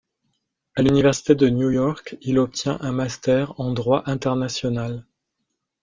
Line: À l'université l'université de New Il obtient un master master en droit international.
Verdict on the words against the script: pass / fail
fail